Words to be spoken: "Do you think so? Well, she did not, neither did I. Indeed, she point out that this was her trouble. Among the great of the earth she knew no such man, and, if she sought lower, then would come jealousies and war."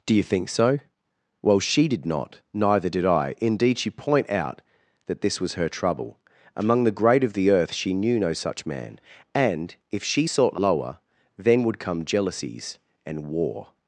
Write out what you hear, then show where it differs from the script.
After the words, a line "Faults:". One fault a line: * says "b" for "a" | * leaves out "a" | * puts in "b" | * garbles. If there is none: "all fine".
"Do you think so? Well, she did not, neither did I. Indeed, she point out that this was her trouble. Among the great of the earth she knew no such man, and, if she sought lower, then would come jealousies and war."
Faults:
all fine